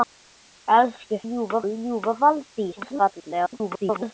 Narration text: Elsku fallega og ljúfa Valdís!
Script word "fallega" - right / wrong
wrong